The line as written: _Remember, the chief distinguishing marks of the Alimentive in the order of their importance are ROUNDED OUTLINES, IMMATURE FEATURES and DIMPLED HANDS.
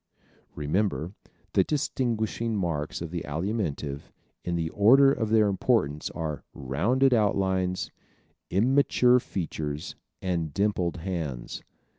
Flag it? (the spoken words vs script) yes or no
yes